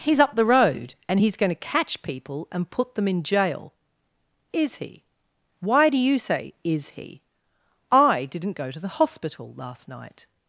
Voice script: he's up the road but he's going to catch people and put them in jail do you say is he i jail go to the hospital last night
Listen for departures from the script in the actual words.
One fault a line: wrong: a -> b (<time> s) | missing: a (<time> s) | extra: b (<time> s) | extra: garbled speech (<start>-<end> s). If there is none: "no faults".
wrong: but -> and (1.1 s)
extra: is he why (4.5 s)
wrong: jail -> didn't (8.2 s)